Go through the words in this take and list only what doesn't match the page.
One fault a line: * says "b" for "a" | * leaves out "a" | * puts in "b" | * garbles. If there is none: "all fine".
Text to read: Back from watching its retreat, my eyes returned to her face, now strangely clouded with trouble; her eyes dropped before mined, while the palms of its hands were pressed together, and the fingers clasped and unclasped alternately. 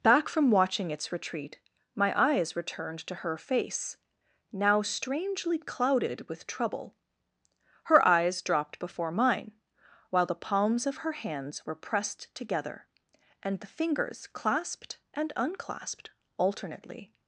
* says "mine" for "mined"
* says "her" for "its"